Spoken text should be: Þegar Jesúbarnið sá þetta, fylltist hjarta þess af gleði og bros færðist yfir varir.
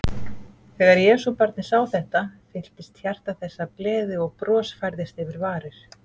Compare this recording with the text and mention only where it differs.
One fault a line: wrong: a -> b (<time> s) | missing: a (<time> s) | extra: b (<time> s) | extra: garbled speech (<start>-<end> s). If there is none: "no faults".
no faults